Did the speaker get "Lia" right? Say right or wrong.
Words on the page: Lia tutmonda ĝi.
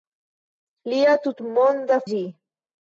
right